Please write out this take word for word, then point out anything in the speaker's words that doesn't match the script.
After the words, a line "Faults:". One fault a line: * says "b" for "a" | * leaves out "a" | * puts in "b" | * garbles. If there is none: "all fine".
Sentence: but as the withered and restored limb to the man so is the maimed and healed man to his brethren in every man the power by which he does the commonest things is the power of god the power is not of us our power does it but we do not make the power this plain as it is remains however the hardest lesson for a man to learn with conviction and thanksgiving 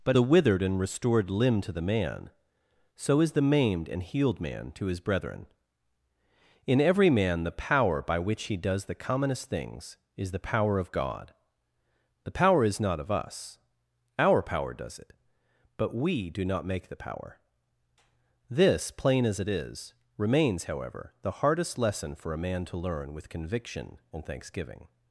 but the withered and restored limb to the man so is the maimed and healed man to his brethren in every man the power by which he does the commonest things is the power of god the power is not of us our power does it but we do not make the power this plain as it is remains however the hardest lesson for a man to learn with conviction and thanksgiving
Faults:
* leaves out "as"